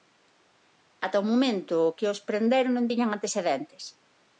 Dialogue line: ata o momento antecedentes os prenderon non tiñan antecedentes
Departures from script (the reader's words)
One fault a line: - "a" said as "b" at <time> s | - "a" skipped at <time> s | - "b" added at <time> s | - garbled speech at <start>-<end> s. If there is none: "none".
- "antecedentes" said as "que" at 2.0 s